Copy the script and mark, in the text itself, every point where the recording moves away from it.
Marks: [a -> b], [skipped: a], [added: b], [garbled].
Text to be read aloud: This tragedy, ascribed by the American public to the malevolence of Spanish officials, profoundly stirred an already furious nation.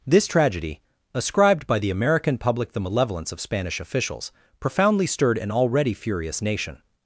This tragedy, ascribed by the American public [skipped: to] the malevolence of Spanish officials, profoundly stirred an already furious nation.